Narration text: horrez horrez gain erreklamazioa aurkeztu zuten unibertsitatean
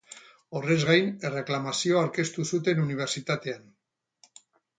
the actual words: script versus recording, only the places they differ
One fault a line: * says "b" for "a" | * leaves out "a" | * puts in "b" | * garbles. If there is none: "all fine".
* leaves out "horrez"